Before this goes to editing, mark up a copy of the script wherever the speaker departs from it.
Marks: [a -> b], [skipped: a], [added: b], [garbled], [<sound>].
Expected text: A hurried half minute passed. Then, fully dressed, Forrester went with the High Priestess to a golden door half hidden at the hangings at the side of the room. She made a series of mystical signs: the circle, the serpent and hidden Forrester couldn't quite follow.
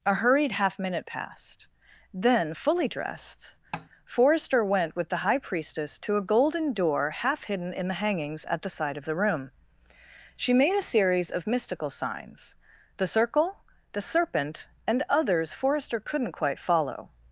A hurried half minute passed. Then, fully dressed, [tap] Forrester went with the High Priestess to a golden door half hidden [at -> in] the hangings at the side of the room. She made a series of mystical signs: the circle, the serpent and [hidden -> others] Forrester couldn't quite follow.